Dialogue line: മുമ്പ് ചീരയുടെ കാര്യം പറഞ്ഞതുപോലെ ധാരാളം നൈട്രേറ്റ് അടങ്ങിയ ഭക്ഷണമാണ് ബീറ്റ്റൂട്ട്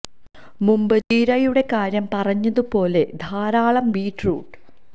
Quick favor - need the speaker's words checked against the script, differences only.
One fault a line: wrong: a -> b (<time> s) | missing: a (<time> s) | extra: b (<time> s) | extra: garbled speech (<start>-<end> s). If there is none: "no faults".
missing: നൈട്രേറ്റ് അടങ്ങിയ ഭക്ഷണമാണ് (3.9 s)